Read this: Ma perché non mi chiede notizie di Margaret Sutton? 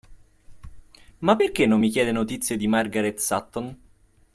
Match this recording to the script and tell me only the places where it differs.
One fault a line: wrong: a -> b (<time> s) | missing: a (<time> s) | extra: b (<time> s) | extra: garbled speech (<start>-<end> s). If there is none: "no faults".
no faults